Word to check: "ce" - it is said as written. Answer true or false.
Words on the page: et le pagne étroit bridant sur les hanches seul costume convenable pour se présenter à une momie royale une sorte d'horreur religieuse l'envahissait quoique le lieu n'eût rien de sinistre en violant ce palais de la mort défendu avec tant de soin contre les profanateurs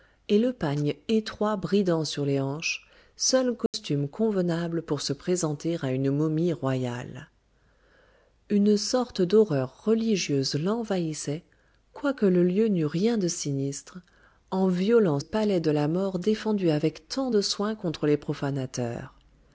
false